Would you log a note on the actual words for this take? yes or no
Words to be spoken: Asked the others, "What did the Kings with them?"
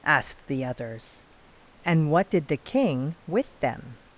yes